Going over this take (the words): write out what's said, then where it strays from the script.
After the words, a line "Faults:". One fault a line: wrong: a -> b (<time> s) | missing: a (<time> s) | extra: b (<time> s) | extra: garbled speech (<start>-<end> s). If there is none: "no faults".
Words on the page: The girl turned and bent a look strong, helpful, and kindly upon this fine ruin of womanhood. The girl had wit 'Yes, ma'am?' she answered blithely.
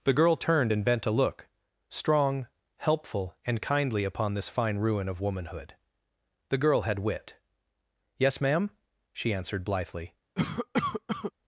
The girl turned and bent a look strong, helpful, and kindly upon this fine ruin of womanhood. The girl had wit 'Yes, ma'am?' she answered blithely.
Faults:
no faults